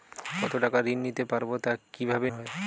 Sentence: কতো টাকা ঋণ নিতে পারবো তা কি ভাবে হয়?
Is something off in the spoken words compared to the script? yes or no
no